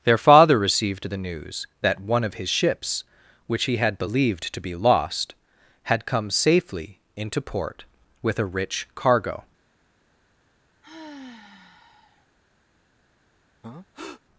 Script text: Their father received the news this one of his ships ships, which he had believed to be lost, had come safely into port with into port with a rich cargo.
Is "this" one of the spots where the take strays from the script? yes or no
yes